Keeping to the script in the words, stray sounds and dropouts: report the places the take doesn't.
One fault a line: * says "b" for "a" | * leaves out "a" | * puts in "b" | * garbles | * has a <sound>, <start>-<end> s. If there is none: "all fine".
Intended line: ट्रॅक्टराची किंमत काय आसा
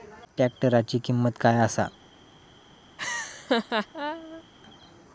* has a laugh, 3.0-4.4 s